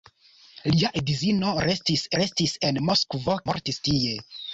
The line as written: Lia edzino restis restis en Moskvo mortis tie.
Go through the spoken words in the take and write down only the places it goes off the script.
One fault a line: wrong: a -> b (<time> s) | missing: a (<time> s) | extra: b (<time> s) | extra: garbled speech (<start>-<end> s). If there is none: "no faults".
no faults